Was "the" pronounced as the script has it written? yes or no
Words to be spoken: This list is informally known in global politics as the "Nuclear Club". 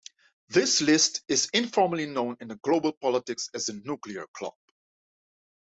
yes